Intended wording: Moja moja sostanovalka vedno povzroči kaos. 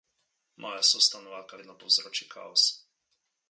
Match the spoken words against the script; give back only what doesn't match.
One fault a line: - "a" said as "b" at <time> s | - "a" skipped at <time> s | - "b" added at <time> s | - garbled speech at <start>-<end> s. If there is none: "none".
- "moja" skipped at 0.8 s